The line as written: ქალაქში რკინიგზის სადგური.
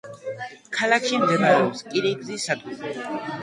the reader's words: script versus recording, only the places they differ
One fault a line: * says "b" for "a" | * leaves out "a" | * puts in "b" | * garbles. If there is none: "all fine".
* puts in "მდებარეობს"